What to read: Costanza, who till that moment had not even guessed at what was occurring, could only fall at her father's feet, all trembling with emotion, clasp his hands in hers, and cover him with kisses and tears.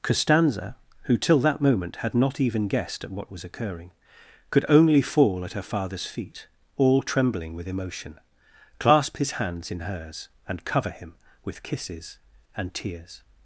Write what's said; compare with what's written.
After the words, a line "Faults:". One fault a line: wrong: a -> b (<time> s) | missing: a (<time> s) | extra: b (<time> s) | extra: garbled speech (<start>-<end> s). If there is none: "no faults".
Costanza, who till that moment had not even guessed at what was occurring, could only fall at her father's feet, all trembling with emotion, clasp his hands in hers, and cover him with kisses and tears.
Faults:
no faults